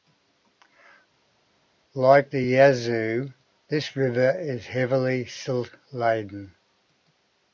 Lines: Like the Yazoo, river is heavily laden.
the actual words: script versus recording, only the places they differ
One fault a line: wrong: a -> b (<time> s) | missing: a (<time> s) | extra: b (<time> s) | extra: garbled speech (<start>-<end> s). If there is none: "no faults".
extra: this (3.7 s)
extra: silt (5.3 s)